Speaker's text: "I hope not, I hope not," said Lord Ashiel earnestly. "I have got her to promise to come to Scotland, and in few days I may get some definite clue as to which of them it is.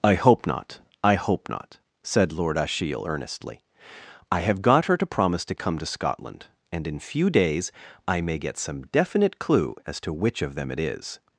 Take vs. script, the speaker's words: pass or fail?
pass